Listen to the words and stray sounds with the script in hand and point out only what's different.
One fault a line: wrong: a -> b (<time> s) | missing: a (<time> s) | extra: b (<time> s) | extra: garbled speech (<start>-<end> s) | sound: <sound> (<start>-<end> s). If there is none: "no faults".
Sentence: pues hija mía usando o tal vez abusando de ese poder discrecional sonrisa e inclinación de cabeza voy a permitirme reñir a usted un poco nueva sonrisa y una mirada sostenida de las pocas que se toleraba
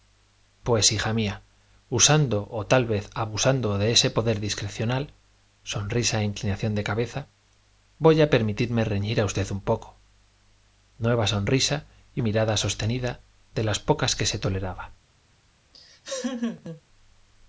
missing: una (12.2 s)
sound: laugh (15.7-16.8 s)